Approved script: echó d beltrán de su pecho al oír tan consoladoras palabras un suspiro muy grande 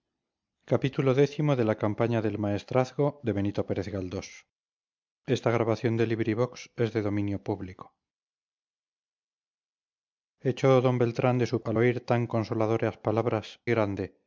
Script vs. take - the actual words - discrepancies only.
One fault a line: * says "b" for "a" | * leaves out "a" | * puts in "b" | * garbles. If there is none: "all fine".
* leaves out "pecho"
* leaves out "un suspiro muy"